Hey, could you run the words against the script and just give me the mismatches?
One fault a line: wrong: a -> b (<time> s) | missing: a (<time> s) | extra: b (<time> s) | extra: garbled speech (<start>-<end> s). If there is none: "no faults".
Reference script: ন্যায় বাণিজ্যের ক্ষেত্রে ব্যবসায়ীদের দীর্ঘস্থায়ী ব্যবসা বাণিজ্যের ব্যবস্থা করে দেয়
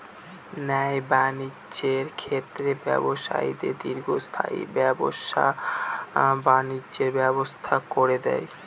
no faults